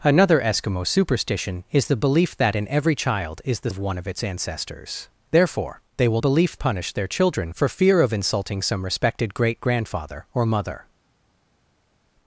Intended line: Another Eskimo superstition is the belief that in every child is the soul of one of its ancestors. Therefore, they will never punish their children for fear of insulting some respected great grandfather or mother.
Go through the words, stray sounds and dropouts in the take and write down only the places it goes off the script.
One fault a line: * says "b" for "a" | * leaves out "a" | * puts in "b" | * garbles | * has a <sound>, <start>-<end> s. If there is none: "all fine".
* leaves out "soul"
* says "belief" for "never"